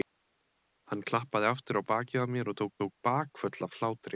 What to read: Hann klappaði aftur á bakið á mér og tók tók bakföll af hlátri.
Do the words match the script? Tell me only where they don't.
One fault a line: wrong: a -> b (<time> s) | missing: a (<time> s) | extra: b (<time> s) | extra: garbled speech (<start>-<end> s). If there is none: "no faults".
no faults